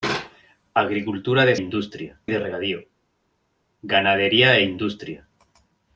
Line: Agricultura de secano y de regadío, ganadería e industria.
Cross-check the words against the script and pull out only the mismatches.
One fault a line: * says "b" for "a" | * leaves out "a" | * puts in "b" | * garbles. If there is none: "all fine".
* says "industria" for "secano"